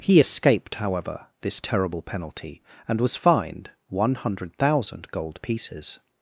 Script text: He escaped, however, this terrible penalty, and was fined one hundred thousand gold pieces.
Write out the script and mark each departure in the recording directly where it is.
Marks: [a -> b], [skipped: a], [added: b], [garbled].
He escaped, however, this terrible penalty, and was fined one hundred thousand gold pieces.